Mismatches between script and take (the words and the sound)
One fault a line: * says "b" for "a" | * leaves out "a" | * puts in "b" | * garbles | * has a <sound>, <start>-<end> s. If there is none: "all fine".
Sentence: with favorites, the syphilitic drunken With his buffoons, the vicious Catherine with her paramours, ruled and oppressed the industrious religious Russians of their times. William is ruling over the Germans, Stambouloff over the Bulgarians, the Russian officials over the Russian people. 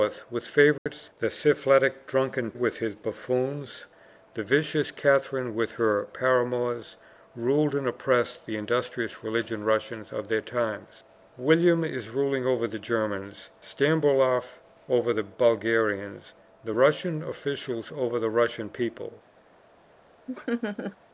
* has a dropout, 0.8-0.9 s
* has a laugh, 20.3-21.0 s